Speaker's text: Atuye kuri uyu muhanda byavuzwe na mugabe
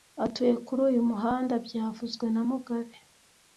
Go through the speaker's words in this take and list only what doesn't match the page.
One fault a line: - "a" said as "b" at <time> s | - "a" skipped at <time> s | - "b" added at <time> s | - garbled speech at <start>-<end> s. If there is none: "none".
none